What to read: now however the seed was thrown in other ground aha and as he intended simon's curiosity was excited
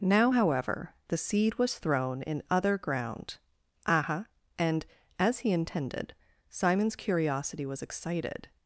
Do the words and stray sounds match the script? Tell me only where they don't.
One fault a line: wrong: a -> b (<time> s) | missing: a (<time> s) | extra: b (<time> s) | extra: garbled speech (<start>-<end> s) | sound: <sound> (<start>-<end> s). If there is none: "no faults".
no faults